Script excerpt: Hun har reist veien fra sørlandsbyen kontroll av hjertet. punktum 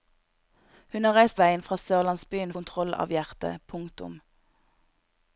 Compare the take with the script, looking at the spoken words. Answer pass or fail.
pass